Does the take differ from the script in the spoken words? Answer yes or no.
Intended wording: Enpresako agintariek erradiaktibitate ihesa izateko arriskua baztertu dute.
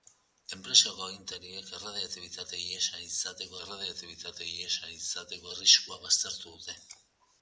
yes